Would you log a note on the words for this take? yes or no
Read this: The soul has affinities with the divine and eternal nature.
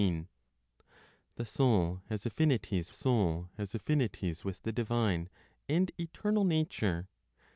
yes